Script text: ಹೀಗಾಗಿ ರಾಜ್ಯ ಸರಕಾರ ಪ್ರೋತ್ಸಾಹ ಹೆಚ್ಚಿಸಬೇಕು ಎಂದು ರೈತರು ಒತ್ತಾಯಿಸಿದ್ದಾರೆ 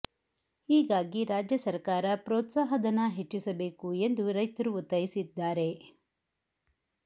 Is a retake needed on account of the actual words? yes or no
yes